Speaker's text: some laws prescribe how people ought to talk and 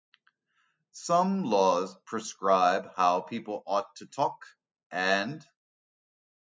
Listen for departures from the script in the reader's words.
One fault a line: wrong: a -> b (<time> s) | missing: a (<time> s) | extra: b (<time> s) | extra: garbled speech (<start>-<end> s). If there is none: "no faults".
no faults